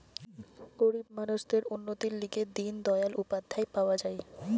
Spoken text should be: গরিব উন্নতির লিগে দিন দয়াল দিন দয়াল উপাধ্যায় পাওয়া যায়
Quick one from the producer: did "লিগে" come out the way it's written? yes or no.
yes